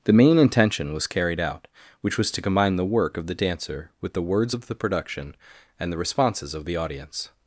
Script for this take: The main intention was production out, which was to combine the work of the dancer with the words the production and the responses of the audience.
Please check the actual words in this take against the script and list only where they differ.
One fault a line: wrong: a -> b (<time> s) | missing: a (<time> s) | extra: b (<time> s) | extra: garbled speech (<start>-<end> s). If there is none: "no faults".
wrong: production -> carried (1.1 s)
extra: of (4.5 s)